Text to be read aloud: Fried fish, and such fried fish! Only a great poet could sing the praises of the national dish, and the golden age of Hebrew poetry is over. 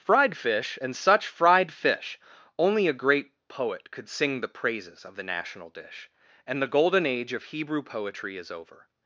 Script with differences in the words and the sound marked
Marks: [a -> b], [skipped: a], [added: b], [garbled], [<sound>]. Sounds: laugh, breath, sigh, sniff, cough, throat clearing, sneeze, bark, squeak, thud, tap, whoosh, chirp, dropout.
Fried fish, and such fried fish! Only a great poet could sing the praises of the national dish, and the golden age of Hebrew poetry is over.